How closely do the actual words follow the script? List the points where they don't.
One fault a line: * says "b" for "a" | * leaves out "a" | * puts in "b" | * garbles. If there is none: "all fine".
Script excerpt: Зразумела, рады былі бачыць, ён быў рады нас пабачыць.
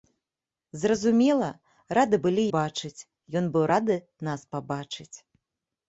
all fine